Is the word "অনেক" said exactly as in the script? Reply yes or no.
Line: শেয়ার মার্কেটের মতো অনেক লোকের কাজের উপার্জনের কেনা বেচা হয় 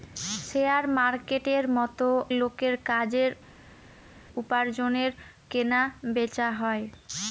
no